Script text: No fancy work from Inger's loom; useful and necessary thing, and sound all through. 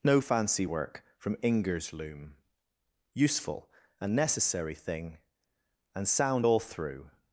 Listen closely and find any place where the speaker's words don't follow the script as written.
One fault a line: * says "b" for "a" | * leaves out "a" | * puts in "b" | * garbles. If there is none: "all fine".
all fine